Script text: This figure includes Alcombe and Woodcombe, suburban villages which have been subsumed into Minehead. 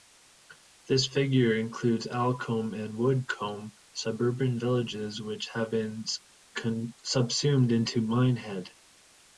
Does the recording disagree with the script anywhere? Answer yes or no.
no